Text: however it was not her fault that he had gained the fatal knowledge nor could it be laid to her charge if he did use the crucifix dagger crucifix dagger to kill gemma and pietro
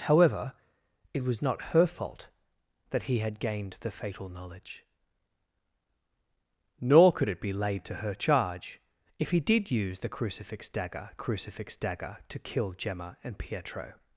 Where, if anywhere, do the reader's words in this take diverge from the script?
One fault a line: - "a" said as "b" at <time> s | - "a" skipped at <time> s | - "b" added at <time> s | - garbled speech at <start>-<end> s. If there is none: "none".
none